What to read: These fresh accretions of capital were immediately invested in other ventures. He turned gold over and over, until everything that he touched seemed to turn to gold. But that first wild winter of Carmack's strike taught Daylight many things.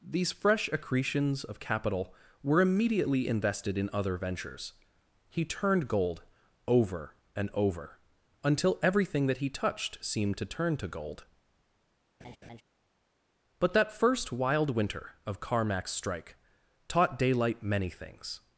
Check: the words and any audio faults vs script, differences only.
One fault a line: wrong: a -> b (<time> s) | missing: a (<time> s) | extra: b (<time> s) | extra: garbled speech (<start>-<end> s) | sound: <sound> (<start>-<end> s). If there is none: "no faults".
sound: laugh (12.2-12.6 s)